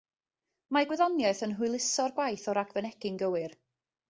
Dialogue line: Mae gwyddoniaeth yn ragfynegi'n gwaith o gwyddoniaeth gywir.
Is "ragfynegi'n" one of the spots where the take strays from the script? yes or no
yes